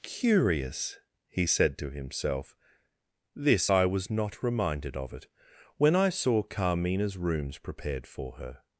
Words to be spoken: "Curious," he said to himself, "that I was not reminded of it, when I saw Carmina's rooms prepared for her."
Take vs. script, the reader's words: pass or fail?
fail